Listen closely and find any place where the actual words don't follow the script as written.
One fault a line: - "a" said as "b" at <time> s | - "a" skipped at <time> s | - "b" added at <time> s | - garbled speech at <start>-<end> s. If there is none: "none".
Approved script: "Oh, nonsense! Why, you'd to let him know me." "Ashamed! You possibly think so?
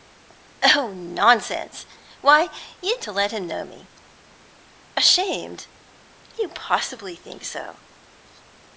none